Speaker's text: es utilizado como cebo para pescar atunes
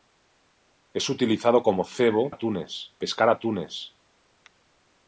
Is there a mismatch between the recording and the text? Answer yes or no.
yes